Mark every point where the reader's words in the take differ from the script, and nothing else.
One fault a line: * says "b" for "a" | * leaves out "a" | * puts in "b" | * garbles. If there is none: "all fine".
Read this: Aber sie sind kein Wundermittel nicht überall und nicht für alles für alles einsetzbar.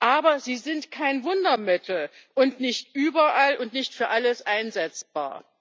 * puts in "und"
* leaves out "für alles"